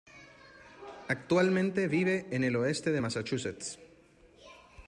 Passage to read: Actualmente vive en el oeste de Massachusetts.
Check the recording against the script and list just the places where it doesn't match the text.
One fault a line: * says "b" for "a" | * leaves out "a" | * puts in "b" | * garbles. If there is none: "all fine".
all fine